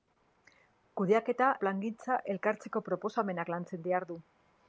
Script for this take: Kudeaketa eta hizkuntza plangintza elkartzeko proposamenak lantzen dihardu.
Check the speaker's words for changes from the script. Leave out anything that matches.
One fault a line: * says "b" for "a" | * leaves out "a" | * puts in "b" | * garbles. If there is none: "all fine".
* leaves out "eta hizkuntza"